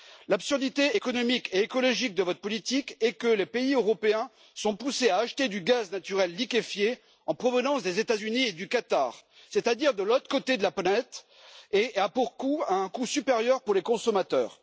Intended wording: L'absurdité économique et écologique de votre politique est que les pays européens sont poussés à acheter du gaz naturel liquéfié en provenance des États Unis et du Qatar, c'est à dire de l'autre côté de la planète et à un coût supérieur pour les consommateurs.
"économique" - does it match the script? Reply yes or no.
yes